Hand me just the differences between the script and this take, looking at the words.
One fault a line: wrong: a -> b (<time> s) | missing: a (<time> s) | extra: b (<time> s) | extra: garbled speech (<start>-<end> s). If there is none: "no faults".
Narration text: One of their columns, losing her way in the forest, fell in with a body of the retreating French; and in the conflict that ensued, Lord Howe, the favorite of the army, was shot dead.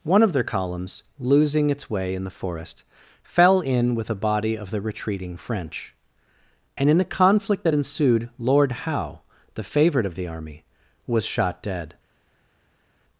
wrong: her -> its (1.7 s)